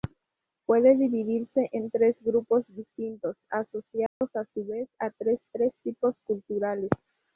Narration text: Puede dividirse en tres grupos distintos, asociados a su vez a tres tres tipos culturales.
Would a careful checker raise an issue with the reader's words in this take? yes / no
no